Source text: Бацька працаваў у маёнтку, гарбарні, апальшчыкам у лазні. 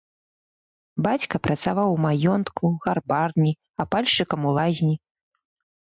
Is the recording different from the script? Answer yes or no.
no